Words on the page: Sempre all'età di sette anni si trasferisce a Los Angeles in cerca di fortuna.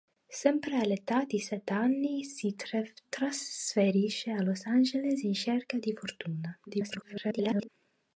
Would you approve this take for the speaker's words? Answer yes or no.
no